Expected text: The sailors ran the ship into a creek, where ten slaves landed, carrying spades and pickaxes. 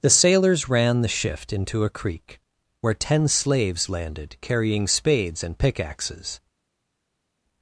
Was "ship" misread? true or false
true